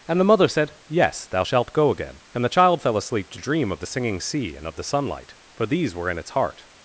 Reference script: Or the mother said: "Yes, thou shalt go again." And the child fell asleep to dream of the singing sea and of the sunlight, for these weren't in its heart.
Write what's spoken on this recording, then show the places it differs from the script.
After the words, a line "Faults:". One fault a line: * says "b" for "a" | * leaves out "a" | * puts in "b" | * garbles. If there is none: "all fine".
And the mother said: "Yes, thou shalt go again." And the child fell asleep to dream of the singing sea and of the sunlight, for these were in its heart.
Faults:
* says "And" for "Or"
* says "were" for "weren't"